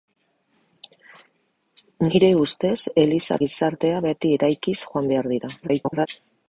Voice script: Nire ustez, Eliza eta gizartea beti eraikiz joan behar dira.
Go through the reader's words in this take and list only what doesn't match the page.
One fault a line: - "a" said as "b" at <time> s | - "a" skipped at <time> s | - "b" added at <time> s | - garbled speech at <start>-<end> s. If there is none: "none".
- "eta" skipped at 3.4 s
- garbled speech at 5.6-6.1 s